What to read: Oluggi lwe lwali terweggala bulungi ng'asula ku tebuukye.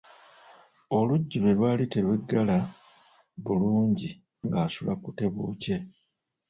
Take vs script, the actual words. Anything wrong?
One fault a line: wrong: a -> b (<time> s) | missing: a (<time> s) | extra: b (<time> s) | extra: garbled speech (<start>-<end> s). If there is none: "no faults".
no faults